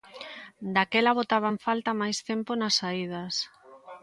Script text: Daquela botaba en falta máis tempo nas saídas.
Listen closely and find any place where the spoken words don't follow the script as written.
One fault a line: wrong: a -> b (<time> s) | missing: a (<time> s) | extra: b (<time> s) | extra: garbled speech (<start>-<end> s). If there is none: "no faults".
no faults